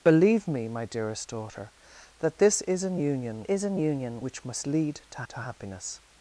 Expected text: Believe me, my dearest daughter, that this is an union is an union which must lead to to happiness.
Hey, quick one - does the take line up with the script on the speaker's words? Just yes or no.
yes